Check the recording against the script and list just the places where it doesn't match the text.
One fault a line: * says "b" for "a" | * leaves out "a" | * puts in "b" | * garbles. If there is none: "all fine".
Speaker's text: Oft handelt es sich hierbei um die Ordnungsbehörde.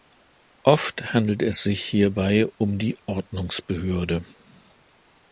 all fine